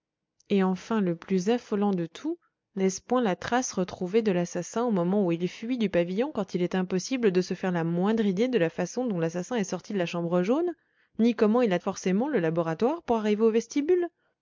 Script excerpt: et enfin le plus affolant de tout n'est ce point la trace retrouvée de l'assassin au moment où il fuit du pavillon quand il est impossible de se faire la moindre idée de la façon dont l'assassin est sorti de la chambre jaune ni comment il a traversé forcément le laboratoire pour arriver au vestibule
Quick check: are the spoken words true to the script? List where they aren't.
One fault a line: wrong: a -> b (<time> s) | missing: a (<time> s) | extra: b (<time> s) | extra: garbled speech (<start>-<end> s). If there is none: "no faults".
missing: traversé (11.8 s)